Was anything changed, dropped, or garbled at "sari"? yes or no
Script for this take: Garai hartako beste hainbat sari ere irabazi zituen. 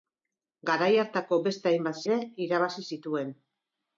yes